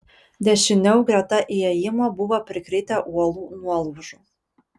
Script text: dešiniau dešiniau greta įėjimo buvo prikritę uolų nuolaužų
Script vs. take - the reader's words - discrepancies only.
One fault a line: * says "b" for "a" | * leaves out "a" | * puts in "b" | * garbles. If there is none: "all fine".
* leaves out "dešiniau"